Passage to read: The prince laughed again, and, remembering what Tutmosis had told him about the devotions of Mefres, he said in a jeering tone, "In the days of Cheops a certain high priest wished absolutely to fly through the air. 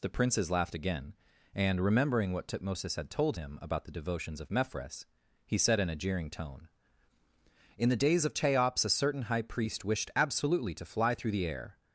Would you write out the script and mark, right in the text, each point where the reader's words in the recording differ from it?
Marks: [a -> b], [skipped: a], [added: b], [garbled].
The [prince -> princes] laughed again, and, remembering what Tutmosis had told him about the devotions of Mefres, he said in a jeering tone, "In the days of Cheops a certain high priest wished absolutely to fly through the air.